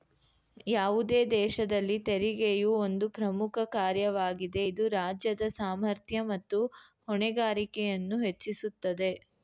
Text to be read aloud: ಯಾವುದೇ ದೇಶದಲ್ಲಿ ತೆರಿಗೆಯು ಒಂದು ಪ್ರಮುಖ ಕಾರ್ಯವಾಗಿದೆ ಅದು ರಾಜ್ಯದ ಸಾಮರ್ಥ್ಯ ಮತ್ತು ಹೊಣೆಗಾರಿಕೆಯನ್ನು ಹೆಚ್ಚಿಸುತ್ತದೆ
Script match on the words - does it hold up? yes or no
no